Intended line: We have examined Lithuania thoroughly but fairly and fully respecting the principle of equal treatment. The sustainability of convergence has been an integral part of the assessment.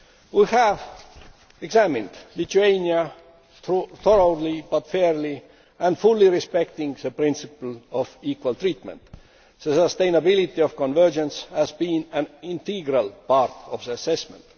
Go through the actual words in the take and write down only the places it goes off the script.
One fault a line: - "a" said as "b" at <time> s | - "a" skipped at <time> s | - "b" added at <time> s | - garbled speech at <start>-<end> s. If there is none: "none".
none